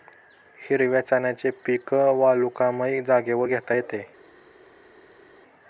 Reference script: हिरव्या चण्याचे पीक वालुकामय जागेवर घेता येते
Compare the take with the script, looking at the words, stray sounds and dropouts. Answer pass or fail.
pass